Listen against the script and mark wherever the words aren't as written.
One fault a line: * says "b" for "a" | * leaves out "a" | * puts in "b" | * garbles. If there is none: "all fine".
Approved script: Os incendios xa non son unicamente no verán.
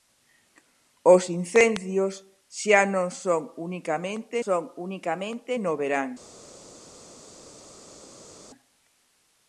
* puts in "son unicamente"